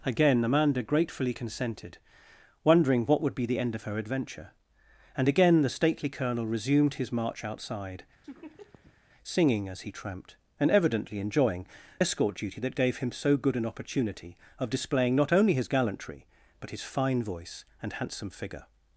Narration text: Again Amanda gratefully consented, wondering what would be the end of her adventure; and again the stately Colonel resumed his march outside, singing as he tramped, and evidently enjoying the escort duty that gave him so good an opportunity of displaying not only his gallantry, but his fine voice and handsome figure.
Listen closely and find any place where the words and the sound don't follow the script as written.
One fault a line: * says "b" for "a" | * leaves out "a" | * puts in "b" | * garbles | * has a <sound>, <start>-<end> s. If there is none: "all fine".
* has a laugh, 8.2-9.0 s
* leaves out "the"